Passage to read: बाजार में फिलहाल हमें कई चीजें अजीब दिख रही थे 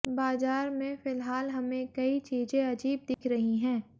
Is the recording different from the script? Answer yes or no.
yes